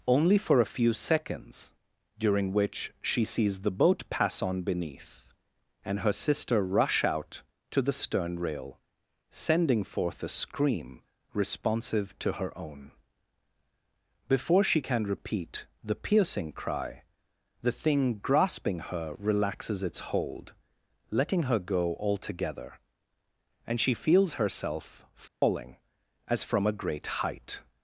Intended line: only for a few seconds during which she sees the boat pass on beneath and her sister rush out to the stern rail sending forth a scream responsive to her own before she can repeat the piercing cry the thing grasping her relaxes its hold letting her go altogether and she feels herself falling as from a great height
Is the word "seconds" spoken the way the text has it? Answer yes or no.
yes